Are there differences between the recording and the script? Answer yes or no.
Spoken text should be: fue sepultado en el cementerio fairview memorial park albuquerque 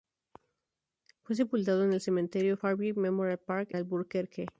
no